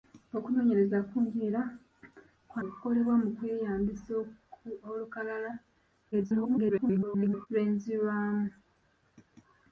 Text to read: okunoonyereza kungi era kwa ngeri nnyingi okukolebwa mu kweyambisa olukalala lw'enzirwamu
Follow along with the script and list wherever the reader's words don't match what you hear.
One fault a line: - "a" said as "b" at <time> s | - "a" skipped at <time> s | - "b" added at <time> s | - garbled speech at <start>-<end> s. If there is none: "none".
- "ngeri nnyingi" skipped at 2.6 s
- garbled speech at 6.1-7.5 s